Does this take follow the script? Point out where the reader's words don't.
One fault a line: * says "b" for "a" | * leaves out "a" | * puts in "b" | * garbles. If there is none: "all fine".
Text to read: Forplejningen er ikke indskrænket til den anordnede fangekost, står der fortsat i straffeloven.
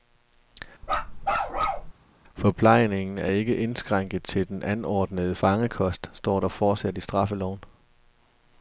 all fine